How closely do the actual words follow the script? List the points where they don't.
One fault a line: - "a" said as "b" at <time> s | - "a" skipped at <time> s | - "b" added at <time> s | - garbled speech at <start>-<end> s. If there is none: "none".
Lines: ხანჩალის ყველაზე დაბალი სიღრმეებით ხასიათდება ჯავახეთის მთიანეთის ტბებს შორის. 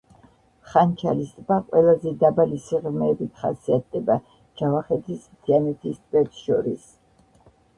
- "ტბა" added at 1.4 s